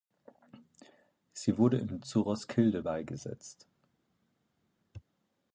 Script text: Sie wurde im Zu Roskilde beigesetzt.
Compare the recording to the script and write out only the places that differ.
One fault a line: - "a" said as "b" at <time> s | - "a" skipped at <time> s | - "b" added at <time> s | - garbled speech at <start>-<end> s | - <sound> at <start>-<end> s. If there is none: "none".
none